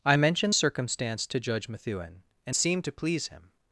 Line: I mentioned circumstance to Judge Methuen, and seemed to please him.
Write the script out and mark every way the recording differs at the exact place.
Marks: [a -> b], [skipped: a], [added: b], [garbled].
I mentioned circumstance to Judge Methuen, and seemed to please him.